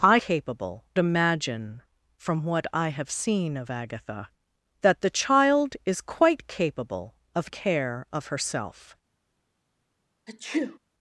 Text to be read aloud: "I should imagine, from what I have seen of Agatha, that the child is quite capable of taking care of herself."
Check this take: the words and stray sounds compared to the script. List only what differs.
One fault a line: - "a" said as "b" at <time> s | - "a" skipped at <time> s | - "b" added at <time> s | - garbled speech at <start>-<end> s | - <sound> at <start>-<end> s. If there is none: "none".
- "should" said as "capable" at 0.2 s
- "taking" skipped at 7.5 s
- sneeze at 10.3-10.8 s